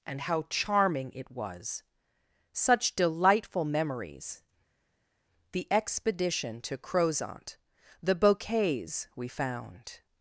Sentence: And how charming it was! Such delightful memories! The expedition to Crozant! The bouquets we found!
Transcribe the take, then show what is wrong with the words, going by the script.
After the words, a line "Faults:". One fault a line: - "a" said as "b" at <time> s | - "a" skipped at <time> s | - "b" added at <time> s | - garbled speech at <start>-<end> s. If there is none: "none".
And how charming it was! Such delightful memories! The expedition to Crozant! The bouquets we found!
Faults:
none